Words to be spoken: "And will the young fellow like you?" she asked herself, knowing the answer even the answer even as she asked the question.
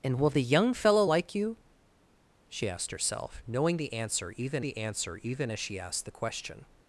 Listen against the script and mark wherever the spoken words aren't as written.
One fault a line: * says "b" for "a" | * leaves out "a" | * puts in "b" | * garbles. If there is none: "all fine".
all fine